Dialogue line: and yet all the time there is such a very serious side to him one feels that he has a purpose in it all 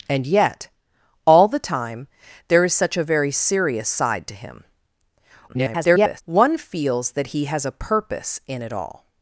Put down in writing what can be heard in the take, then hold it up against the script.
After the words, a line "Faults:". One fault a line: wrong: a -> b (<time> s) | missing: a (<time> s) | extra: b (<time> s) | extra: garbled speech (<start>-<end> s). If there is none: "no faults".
and yet all the time there is such a very serious side to him [garbled] one feels that he has a purpose in it all
Faults:
extra: garbled speech (5.5-6.2 s)